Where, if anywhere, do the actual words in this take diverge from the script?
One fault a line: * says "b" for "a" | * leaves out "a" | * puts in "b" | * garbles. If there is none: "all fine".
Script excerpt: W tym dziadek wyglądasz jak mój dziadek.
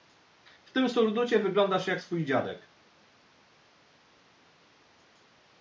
* says "surducie" for "dziadek"
* says "swój" for "mój"